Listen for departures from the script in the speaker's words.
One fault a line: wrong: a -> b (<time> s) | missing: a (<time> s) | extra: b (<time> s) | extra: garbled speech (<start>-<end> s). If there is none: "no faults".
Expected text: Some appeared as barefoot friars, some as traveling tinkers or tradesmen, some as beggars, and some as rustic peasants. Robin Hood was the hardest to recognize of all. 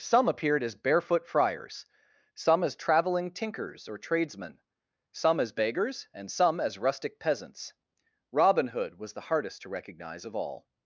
no faults